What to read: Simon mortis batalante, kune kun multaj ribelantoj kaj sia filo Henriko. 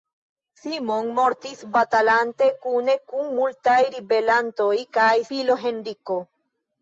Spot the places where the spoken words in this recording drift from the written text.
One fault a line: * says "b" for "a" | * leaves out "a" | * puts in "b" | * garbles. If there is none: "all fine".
* leaves out "sia"